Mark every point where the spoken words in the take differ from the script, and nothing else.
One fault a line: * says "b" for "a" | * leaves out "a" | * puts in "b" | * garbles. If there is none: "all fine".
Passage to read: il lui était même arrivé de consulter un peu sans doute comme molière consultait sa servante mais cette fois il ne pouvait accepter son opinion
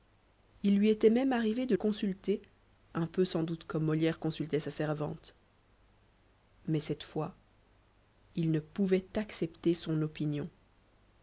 all fine